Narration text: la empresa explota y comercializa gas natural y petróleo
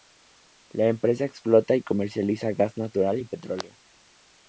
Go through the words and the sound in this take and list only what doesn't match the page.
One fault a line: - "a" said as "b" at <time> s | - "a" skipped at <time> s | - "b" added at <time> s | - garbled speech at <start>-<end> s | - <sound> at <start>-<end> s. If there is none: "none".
none